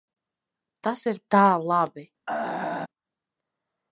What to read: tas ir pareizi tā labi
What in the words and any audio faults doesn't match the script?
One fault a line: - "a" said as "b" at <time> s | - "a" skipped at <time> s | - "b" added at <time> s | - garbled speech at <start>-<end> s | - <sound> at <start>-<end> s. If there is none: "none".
- "pareizi" skipped at 1.2 s
- throat clearing at 2.3-2.9 s